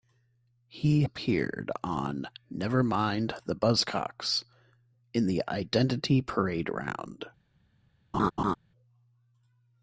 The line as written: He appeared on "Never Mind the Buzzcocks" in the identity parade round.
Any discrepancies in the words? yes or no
no